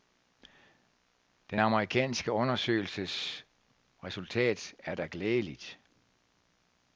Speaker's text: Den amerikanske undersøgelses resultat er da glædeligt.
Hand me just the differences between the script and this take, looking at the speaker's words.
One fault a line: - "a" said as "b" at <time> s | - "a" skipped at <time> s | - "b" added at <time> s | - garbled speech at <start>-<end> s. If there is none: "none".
none